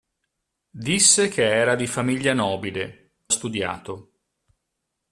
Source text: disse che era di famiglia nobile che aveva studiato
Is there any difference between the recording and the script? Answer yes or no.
yes